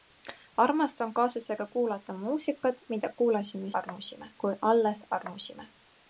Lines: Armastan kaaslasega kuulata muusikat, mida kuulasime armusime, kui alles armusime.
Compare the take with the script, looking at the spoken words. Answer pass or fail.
pass